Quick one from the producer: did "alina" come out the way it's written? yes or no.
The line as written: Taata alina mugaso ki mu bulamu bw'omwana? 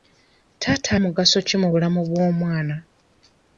no